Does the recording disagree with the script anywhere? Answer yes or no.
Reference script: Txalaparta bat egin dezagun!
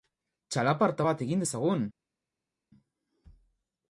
no